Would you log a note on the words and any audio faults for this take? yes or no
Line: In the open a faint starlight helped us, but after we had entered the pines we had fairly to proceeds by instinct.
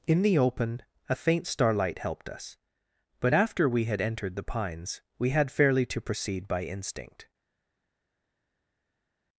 yes